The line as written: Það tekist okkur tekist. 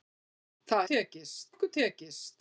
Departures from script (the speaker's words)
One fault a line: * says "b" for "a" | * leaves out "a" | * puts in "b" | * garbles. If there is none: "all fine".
all fine